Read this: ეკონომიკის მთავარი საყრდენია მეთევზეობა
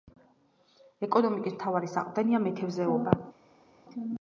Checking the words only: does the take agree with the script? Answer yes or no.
yes